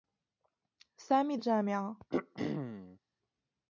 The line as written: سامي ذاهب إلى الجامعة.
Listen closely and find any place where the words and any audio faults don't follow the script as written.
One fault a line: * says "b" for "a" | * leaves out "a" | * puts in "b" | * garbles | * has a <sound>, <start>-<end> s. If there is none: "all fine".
* leaves out "ذاهب إلى"
* has a throat clearing, 2.1-3.0 s